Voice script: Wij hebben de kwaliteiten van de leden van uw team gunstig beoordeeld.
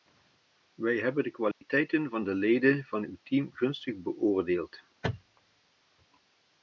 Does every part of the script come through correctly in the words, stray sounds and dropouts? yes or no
no